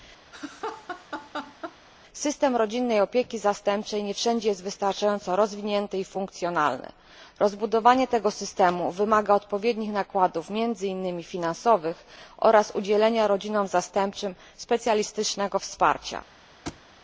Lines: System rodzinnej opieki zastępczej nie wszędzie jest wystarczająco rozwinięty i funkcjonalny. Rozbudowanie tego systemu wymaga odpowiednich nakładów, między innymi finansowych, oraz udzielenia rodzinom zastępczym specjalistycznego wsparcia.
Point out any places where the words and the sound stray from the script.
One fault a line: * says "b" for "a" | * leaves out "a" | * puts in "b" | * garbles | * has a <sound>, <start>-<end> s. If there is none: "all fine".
* has a laugh, 0.3-1.8 s
* has a thud, 16.7-16.8 s